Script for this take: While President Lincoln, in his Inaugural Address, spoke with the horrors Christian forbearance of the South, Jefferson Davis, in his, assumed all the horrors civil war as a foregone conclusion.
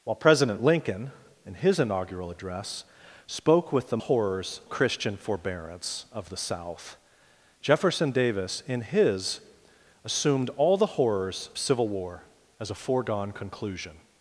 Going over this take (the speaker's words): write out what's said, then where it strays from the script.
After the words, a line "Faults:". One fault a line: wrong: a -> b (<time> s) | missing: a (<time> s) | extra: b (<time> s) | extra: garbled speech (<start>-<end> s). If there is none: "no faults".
While President Lincoln, in his Inaugural Address, spoke with the horrors Christian forbearance of the South, Jefferson Davis, in his, assumed all the horrors civil war as a foregone conclusion.
Faults:
no faults